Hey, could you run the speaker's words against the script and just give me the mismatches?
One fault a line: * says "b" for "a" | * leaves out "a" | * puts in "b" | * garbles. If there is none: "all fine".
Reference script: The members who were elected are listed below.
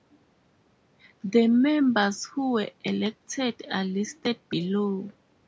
all fine